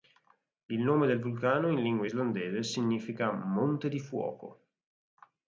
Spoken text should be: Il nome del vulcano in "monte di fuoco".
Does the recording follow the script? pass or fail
fail